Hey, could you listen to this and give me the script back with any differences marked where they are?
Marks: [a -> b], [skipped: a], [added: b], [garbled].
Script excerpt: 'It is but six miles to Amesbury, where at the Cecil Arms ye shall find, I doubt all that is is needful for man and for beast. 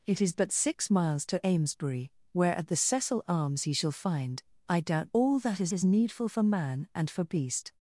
'It is but six miles to Amesbury, where at the Cecil Arms ye shall find, I doubt all that is is needful for man and for beast.